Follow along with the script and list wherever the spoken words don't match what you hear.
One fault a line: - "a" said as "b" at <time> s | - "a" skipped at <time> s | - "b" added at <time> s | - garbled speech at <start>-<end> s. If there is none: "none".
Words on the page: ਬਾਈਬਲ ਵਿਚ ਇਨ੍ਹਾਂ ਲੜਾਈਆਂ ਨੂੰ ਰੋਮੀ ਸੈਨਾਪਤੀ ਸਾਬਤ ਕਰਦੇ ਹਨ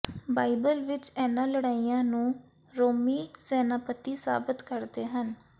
none